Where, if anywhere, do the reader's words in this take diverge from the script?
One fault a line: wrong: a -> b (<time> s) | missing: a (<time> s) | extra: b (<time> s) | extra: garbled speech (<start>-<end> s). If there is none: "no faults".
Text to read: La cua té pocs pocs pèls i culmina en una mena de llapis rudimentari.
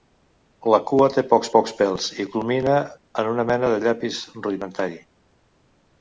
no faults